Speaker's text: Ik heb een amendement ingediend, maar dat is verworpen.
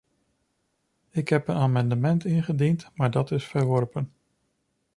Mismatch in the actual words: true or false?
false